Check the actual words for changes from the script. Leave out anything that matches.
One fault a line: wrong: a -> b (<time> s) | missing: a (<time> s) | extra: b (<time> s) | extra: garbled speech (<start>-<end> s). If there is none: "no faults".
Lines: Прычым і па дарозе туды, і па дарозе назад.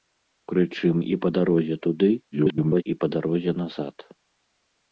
extra: garbled speech (2.3-2.8 s)